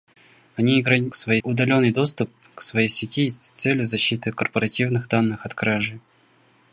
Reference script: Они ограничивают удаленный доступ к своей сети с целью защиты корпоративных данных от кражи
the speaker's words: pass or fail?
fail